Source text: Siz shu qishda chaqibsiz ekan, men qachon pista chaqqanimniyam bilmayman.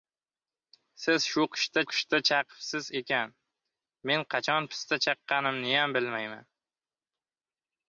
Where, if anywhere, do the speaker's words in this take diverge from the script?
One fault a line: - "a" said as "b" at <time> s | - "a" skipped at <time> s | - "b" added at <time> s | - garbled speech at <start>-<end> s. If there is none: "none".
- "qishda" added at 1.9 s